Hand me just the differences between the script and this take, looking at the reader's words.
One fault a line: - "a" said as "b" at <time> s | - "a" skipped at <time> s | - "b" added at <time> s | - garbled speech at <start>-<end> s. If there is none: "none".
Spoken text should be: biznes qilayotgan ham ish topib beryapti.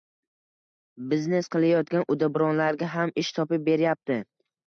- "uddaburonlarga" added at 2.1 s